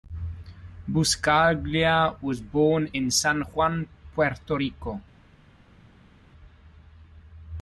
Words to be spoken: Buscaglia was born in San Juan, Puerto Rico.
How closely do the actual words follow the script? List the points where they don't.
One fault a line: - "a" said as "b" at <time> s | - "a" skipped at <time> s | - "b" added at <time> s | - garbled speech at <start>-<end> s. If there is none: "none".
none